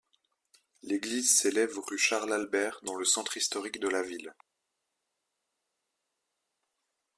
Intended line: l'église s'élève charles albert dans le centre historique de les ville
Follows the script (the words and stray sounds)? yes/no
no